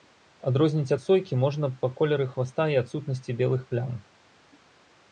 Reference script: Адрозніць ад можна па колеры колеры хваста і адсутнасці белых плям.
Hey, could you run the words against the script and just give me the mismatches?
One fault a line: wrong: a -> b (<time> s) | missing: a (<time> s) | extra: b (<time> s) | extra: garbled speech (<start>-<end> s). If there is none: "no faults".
extra: сойкі (1.0 s)
missing: колеры (2.3 s)